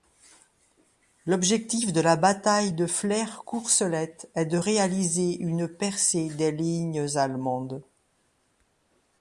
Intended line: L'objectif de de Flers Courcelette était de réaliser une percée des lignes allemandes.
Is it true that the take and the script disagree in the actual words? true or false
true